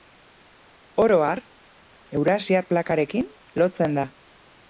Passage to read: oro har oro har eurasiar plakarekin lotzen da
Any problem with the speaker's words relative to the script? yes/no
yes